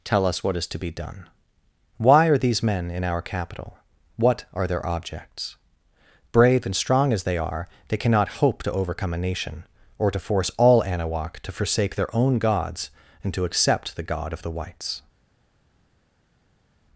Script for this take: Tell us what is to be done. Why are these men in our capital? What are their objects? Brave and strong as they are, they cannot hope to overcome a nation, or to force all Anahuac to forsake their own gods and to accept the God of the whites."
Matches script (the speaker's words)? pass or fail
pass